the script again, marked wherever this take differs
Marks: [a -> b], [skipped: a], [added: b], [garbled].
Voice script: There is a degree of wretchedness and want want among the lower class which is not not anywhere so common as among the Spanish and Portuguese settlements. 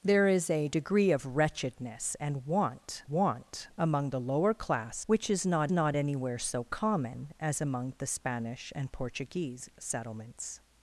There is a degree of wretchedness and want want among the lower class which is not not anywhere so common as among the Spanish and Portuguese settlements.